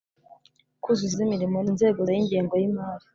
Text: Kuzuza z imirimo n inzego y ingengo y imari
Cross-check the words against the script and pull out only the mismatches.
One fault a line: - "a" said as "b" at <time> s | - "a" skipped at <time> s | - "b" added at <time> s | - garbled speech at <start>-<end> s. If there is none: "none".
none